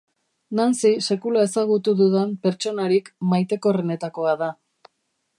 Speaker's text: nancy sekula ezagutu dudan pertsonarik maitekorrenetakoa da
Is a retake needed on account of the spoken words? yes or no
no